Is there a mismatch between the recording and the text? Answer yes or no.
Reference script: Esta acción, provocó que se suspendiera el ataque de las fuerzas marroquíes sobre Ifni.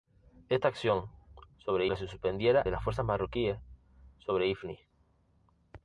yes